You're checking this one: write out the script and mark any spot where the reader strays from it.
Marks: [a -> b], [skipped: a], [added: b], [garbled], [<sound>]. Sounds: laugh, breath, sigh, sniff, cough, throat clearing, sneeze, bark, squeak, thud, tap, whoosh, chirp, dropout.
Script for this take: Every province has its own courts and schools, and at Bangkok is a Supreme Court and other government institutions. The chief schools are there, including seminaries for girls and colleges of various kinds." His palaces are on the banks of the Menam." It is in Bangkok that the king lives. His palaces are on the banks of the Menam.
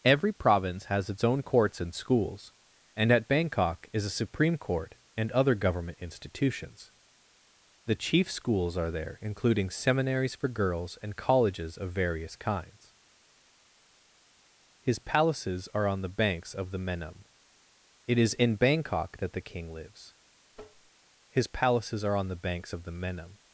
Every province has its own courts and schools, and at Bangkok is a Supreme Court and other government institutions. The chief schools are there, including seminaries for girls and colleges of various kinds." His palaces are on the banks of the Menam." It is in Bangkok that the king lives. [tap] His palaces are on the banks of the Menam.